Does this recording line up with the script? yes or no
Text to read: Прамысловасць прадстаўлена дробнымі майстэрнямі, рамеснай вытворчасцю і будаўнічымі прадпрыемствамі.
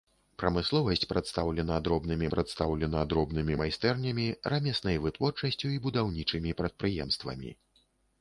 no